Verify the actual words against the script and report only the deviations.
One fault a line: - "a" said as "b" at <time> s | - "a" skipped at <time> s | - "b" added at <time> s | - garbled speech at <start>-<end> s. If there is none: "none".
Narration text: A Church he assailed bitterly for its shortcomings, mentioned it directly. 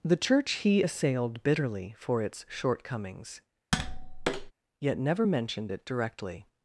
- "A" said as "The" at 0.0 s
- "yet never" added at 4.8 s